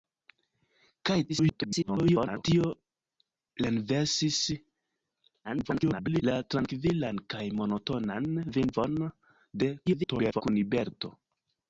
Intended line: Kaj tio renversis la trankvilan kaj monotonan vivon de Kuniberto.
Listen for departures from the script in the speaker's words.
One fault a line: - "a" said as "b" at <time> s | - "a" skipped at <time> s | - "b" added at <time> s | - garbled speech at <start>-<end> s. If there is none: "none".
- garbled speech at 1.3-2.4 s
- garbled speech at 5.4-6.2 s
- garbled speech at 9.9-10.4 s